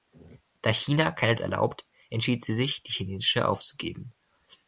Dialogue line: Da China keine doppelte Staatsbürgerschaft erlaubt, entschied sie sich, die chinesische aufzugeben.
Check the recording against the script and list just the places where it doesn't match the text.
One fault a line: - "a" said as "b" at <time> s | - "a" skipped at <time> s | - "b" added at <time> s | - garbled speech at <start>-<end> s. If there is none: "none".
- "doppelte Staatsbürgerschaft" skipped at 1.4 s